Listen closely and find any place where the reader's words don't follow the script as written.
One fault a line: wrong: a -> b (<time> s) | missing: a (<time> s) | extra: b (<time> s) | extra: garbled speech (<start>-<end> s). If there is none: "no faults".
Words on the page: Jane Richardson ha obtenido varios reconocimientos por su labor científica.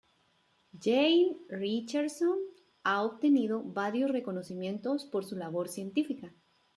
no faults